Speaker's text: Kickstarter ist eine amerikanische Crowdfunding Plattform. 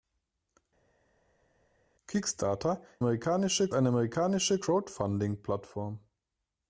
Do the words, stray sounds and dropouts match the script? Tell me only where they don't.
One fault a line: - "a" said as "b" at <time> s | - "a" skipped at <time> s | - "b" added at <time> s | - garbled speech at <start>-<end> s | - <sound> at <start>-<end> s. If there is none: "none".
- "ist" said as "amerikanische" at 3.0 s